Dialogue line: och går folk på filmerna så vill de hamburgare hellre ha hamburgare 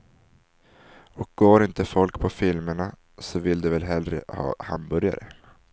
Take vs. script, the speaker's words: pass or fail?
fail